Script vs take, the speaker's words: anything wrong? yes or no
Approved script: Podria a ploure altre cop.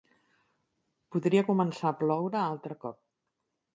yes